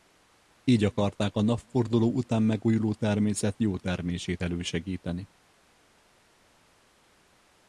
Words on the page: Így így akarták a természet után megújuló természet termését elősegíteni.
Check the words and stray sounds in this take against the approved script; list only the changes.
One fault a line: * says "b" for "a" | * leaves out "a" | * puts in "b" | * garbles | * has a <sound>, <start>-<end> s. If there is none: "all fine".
* leaves out "így"
* says "napforduló" for "természet"
* puts in "jó"